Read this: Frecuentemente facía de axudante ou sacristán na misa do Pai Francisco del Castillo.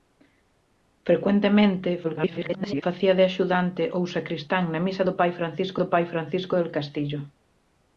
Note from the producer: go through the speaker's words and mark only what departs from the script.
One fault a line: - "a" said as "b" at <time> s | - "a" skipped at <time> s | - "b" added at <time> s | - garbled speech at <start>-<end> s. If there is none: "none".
- garbled speech at 2.0-2.8 s
- "do Pai Francisco" added at 5.8 s